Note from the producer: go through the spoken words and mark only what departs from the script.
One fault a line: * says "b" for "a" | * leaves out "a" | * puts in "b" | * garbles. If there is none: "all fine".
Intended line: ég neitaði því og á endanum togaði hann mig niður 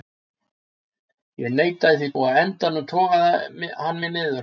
all fine